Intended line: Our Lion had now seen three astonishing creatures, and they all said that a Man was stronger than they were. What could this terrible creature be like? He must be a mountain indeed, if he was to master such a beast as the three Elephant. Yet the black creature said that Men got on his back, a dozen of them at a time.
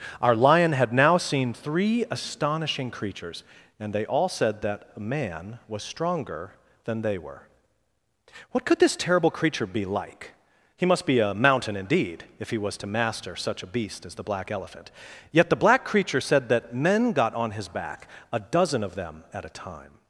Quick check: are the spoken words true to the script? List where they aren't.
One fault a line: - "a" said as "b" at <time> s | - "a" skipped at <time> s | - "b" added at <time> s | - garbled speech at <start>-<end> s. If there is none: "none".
- "three" said as "black" at 14.2 s